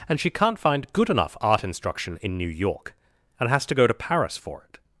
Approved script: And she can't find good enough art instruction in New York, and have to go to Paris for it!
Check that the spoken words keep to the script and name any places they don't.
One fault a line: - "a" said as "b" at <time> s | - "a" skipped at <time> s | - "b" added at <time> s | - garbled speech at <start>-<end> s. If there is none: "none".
- "have" said as "has" at 3.5 s